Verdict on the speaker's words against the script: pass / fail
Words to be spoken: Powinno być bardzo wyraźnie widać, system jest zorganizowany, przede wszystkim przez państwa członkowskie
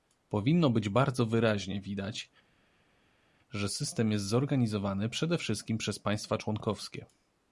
fail